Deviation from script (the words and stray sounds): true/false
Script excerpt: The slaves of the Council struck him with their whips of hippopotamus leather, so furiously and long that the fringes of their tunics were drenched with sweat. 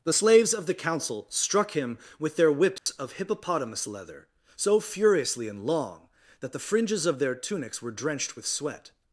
true